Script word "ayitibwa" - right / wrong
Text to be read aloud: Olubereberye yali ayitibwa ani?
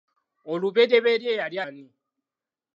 wrong